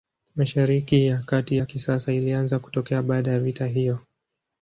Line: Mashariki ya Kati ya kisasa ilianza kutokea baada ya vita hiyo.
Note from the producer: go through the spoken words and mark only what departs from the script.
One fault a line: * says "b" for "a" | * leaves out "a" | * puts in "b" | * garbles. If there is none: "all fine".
all fine